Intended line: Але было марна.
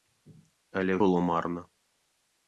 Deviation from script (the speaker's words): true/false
false